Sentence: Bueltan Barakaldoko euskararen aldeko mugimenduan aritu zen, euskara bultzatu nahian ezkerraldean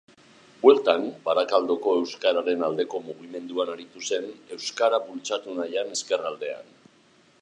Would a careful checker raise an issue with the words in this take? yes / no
no